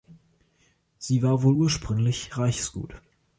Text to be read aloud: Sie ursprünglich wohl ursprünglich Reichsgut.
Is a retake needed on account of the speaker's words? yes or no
yes